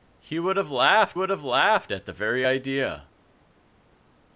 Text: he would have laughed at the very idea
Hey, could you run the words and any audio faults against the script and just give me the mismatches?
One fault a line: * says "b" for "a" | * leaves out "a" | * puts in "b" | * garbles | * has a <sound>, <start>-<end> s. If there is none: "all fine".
* puts in "would have laughed"